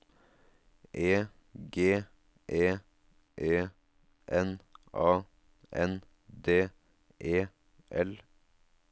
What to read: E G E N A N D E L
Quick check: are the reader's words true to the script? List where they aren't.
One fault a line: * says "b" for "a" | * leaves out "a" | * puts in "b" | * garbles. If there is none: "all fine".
* puts in "E"